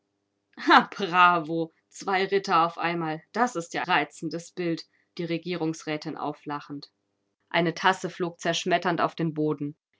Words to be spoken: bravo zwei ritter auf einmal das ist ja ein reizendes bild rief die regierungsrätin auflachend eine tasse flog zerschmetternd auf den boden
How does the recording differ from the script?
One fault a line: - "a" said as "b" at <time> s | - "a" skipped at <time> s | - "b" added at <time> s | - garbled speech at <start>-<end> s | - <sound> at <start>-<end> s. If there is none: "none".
- "ein" skipped at 3.8 s
- "rief" skipped at 4.8 s